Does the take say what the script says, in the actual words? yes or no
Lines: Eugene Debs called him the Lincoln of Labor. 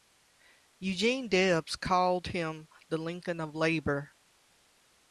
yes